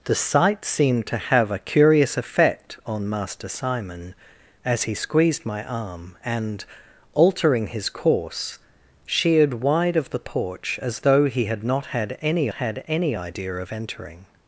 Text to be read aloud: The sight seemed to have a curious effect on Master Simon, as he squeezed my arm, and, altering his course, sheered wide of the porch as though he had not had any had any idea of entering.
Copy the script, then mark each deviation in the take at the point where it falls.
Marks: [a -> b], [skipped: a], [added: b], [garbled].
The sight seemed to have a curious effect on Master Simon, as he squeezed my arm, and, altering his course, sheered wide of the porch as though he had not had any had any idea of entering.